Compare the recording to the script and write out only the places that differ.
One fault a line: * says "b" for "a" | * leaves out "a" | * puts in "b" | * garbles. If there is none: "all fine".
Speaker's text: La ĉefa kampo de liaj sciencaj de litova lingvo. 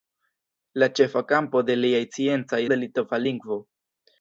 all fine